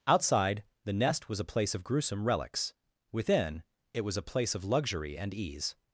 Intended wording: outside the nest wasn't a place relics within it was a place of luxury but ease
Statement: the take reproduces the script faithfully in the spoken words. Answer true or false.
false